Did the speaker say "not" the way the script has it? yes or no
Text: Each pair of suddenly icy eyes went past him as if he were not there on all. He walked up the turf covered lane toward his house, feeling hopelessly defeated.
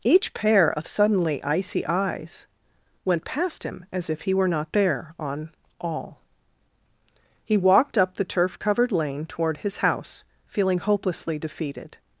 yes